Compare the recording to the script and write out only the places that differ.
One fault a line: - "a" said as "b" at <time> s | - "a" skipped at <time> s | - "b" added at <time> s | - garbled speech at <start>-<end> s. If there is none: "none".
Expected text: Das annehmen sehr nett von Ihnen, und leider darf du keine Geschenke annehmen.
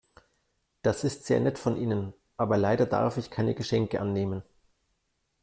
- "annehmen" said as "ist" at 1.0 s
- "und" said as "aber" at 2.4 s
- "du" said as "ich" at 3.2 s